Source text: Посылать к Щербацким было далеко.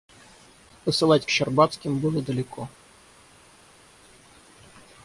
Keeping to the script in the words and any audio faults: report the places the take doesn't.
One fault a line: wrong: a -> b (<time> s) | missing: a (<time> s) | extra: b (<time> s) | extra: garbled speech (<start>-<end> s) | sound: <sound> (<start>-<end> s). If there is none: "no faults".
no faults